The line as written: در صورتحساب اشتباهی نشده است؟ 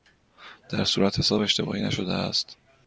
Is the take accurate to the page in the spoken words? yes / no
yes